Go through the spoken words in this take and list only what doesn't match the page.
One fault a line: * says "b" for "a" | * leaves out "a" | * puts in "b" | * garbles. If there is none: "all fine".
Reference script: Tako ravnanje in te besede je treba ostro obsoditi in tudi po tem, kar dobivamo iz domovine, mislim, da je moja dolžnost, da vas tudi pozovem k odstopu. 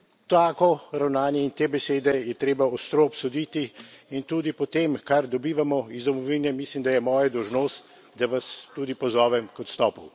all fine